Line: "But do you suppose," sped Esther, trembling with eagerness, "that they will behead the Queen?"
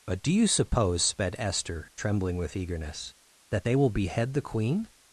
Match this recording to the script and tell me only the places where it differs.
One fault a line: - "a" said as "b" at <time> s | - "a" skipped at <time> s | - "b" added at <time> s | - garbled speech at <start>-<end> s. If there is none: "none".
none